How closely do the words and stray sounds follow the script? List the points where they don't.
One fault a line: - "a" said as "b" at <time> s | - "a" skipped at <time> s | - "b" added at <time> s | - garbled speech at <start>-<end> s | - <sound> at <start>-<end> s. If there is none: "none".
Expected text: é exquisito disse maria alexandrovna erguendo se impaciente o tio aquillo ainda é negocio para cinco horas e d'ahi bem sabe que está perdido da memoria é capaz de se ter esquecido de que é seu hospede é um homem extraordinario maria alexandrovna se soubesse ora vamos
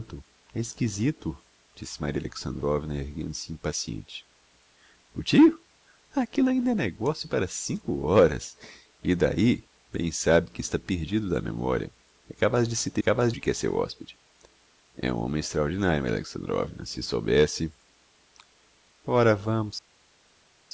- "esquecido" said as "capaz" at 13.0 s